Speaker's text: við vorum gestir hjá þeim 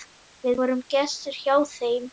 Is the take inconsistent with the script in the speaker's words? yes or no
no